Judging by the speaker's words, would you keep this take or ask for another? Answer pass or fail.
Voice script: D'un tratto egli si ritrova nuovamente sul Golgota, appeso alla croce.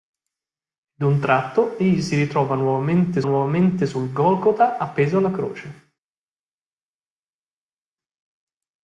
fail